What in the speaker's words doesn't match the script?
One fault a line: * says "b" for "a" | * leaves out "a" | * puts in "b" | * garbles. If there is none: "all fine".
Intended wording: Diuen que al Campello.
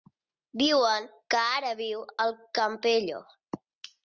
* puts in "ara viu"